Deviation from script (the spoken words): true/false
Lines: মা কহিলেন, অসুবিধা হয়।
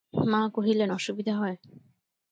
false